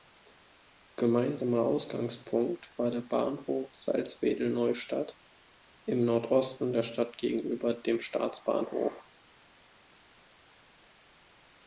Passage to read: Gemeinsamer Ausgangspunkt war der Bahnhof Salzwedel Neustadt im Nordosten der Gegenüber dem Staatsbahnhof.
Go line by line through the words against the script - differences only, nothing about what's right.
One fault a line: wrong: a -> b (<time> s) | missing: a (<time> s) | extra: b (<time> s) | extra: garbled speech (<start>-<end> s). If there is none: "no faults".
extra: Stadt (6.8 s)